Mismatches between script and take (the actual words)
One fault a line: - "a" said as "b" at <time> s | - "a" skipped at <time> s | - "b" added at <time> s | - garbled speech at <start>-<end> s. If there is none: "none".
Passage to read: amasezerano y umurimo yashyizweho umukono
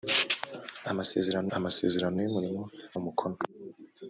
- "amasezerano" added at 1.6 s
- "yashyizweho" skipped at 2.6 s